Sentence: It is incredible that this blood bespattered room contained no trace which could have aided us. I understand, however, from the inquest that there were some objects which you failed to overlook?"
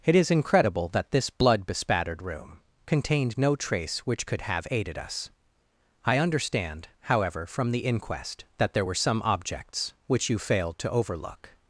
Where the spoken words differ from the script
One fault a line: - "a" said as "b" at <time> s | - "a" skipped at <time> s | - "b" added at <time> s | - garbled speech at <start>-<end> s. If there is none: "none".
none